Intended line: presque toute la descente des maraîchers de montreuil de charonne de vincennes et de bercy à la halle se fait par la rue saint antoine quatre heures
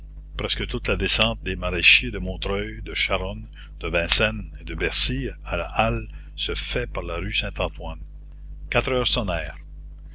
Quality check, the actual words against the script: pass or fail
pass